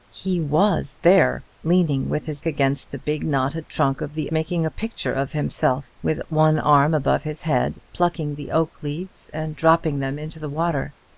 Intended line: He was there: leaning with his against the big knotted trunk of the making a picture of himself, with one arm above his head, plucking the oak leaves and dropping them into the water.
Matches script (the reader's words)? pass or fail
pass